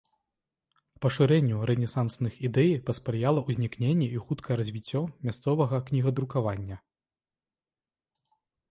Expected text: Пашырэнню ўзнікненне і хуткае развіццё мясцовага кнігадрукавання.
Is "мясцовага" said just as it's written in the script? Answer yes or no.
yes